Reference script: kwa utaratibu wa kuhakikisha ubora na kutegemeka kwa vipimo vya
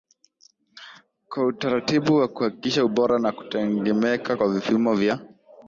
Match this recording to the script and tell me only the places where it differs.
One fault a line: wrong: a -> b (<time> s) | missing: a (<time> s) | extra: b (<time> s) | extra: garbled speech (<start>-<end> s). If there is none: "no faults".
no faults